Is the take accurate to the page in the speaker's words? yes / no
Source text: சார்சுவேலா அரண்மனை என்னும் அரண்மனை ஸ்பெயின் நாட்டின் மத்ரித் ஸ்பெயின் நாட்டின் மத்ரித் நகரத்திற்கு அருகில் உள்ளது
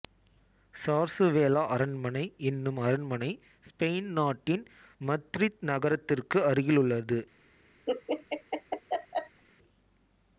no